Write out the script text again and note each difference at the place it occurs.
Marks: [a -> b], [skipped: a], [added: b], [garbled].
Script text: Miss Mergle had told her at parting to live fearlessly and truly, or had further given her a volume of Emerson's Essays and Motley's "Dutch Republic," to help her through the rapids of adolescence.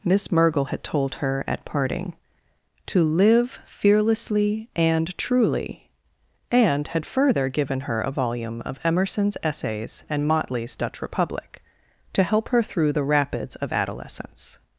Miss Mergle had told her at parting to live fearlessly and truly, [or -> and] had further given her a volume of Emerson's Essays and Motley's "Dutch Republic," to help her through the rapids of adolescence.